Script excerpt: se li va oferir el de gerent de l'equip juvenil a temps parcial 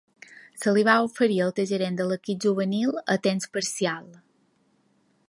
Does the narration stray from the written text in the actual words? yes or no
no